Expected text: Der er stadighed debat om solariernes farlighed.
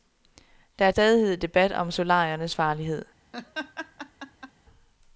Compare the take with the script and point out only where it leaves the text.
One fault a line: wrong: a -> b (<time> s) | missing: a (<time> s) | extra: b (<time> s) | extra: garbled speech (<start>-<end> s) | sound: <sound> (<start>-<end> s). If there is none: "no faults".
sound: laugh (3.3-4.5 s)